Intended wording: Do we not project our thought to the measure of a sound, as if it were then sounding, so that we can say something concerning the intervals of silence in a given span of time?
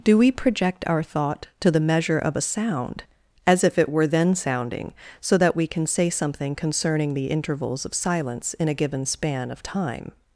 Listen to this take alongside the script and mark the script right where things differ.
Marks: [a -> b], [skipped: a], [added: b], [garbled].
Do we [skipped: not] project our thought to the measure of a sound, as if it were then sounding, so that we can say something concerning the intervals of silence in a given span of time?